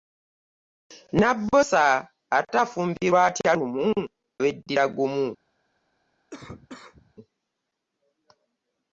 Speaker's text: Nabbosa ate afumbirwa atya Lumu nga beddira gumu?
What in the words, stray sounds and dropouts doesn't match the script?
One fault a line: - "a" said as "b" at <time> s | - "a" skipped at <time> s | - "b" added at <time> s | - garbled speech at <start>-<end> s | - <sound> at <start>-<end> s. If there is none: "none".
- "nga" skipped at 3.9 s
- cough at 6.3-7.1 s